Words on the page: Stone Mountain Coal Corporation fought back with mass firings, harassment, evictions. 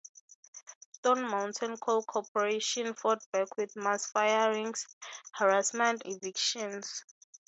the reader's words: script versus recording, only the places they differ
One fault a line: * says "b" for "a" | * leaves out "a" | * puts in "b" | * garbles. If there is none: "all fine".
all fine